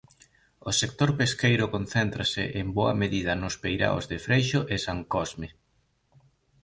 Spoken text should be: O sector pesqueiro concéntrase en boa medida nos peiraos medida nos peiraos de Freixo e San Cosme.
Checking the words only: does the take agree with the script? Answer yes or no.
no